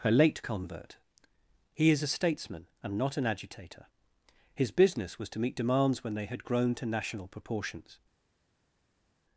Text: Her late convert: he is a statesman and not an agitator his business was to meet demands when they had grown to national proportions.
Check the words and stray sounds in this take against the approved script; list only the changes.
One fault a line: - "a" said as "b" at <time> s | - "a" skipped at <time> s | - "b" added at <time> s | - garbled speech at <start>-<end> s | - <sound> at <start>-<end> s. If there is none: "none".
none